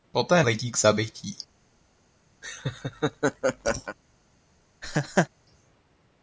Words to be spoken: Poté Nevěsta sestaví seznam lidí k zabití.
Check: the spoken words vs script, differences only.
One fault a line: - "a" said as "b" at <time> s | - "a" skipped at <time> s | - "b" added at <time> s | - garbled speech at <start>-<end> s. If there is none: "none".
- "Nevěsta sestaví seznam" skipped at 0.4 s